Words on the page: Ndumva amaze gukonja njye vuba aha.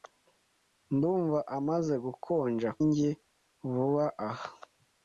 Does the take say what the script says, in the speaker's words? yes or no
yes